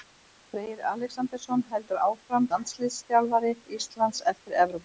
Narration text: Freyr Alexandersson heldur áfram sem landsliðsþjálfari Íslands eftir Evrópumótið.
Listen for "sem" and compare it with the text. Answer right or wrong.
wrong